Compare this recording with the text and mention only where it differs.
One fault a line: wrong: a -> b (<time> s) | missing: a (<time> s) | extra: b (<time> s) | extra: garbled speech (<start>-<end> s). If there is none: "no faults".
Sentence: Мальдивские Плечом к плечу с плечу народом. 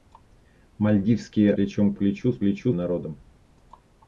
no faults